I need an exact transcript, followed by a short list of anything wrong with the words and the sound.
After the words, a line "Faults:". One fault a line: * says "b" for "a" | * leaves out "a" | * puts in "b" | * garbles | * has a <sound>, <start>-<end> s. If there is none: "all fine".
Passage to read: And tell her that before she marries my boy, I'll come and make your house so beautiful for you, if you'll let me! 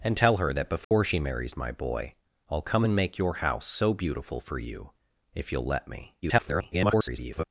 And tell her that before she marries my boy, I'll come and make your house so beautiful for you, if you'll let me! [garbled]
Faults:
* has a dropout, 0.8-0.9 s
* garbles